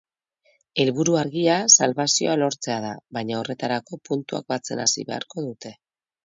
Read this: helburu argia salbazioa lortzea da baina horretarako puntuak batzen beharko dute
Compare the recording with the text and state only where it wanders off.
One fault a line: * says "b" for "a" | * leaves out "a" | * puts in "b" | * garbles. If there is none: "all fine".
* puts in "hasi"